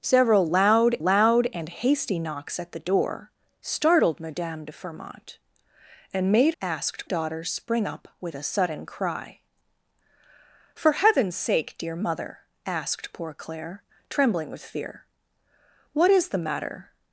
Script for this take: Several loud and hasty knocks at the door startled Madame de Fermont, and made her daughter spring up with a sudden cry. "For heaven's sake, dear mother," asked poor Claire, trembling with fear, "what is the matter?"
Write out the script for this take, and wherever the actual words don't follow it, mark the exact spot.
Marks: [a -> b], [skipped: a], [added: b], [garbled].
Several loud [added: loud] and hasty knocks at the door startled Madame de Fermont, and made [her -> asked] daughter spring up with a sudden cry. "For heaven's sake, dear mother," asked poor Claire, trembling with fear, "what is the matter?"